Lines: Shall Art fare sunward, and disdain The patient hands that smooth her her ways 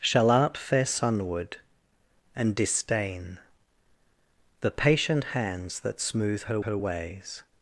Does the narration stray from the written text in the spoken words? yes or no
no